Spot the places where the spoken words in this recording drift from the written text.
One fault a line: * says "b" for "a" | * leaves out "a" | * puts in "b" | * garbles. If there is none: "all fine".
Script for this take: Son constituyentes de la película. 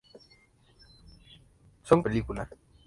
* leaves out "constituyentes de la"